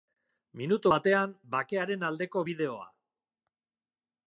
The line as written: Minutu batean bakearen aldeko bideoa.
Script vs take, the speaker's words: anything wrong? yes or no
no